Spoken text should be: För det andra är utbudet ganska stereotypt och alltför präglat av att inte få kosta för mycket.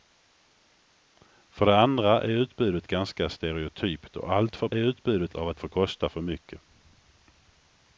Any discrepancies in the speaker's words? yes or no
yes